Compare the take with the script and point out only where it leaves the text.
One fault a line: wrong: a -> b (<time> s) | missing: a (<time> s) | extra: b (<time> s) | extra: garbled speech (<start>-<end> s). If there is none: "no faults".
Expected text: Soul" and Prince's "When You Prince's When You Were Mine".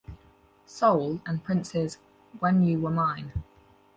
missing: Prince's When You (2.8 s)